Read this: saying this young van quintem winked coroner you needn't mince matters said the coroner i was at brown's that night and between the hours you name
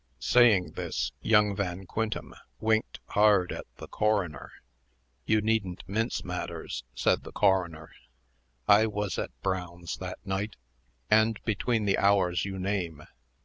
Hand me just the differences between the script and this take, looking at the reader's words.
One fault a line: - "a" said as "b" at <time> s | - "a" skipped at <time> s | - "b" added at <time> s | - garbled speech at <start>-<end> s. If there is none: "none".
- "hard at the" added at 3.1 s